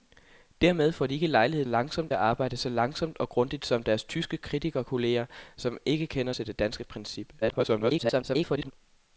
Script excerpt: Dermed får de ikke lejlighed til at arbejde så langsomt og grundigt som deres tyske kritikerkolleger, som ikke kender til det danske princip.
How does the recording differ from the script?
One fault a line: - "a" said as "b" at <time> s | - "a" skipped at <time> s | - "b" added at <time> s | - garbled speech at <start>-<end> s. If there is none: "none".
- "til" said as "langsomt" at 1.6 s
- garbled speech at 7.4-8.7 s